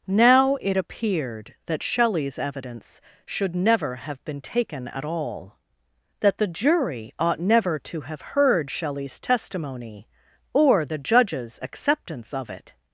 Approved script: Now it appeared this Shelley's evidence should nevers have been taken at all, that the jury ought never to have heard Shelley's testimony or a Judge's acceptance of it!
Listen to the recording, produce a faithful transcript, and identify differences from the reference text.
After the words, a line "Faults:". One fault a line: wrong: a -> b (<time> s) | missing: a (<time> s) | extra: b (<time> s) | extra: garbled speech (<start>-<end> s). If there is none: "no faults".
Now it appeared that Shelley's evidence should never have been taken at all, that the jury ought never to have heard Shelley's testimony or the Judge's acceptance of it!
Faults:
wrong: this -> that (1.7 s)
wrong: nevers -> never (3.5 s)
wrong: a -> the (10.8 s)